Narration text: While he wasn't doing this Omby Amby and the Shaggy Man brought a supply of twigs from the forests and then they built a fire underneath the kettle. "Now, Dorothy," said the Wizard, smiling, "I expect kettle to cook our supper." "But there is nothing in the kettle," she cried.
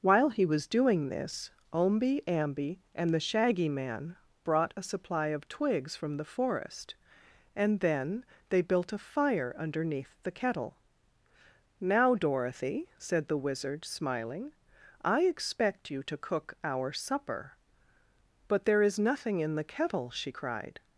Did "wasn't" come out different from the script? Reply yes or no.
yes